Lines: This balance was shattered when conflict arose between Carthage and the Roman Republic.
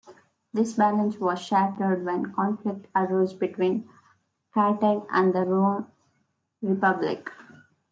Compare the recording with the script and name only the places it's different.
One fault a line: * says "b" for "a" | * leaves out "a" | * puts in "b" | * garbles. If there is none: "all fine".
all fine